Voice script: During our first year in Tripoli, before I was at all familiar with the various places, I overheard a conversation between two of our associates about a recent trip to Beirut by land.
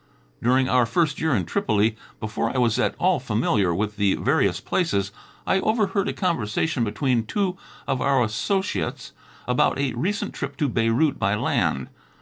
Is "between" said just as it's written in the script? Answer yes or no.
yes